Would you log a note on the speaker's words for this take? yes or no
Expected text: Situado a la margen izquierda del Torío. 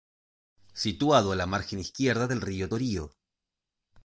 yes